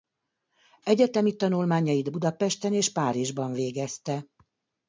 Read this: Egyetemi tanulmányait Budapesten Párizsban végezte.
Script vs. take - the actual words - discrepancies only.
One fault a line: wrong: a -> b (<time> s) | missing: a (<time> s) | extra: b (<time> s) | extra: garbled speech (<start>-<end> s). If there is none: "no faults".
extra: és (2.7 s)